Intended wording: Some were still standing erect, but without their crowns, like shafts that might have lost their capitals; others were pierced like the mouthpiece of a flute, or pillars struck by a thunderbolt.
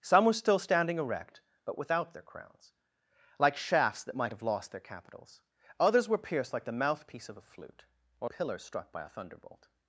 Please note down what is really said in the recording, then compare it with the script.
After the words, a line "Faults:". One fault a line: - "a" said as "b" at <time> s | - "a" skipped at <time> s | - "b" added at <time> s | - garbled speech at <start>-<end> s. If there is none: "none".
Some were still standing erect, but without their crowns, like shafts that might have lost their capitals; others were pierced like the mouthpiece of a flute, or pillars struck by a thunderbolt.
Faults:
none